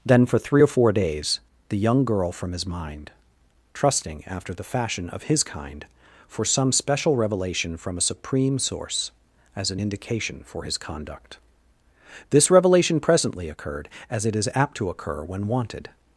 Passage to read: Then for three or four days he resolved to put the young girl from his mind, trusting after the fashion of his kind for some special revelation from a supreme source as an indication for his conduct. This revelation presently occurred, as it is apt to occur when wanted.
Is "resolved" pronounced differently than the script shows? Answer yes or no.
yes